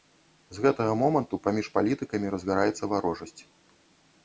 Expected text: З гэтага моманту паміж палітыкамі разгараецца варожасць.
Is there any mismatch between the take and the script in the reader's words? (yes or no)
no